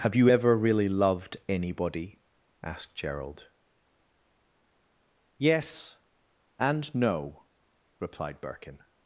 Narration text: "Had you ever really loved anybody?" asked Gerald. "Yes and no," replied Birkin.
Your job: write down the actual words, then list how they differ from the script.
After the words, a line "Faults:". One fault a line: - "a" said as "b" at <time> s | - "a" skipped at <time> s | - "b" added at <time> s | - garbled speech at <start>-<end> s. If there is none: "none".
"Have you ever really loved anybody?" asked Gerald. "Yes and no," replied Birkin.
Faults:
- "Had" said as "Have" at 0.0 s